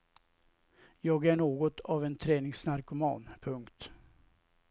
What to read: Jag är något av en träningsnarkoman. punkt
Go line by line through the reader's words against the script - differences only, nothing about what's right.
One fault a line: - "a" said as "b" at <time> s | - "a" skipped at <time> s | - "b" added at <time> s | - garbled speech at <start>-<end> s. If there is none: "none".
none